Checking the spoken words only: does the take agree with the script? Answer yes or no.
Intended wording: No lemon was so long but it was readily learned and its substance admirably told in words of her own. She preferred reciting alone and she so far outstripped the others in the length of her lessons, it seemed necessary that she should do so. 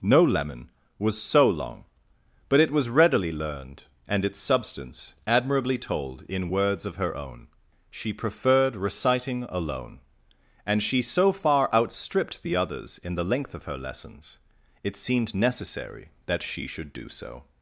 yes